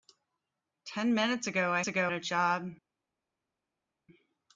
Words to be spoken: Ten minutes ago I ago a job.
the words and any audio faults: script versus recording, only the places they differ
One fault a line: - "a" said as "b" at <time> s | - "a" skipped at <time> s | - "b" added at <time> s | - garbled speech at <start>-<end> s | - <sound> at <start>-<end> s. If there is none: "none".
none